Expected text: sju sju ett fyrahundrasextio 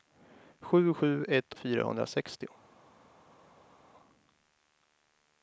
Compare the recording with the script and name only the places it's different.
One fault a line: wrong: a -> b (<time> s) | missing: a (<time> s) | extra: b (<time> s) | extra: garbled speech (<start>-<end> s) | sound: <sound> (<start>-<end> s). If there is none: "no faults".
no faults